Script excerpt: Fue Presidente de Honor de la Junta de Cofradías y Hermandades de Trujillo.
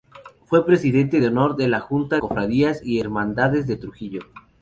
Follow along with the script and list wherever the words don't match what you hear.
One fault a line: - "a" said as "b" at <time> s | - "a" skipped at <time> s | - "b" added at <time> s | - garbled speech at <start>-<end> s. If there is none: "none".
- "de" skipped at 2.2 s